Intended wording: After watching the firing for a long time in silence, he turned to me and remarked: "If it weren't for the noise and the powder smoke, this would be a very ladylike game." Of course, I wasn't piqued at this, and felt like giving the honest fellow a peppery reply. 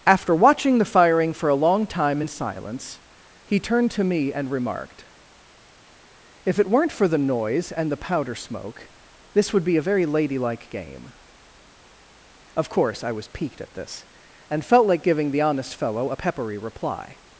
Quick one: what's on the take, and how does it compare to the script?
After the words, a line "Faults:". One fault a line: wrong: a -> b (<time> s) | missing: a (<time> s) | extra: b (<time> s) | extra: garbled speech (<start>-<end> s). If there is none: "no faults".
After watching the firing for a long time in silence, he turned to me and remarked: "If it weren't for the noise and the powder smoke, this would be a very ladylike game." Of course, I was piqued at this, and felt like giving the honest fellow a peppery reply.
Faults:
wrong: wasn't -> was (13.1 s)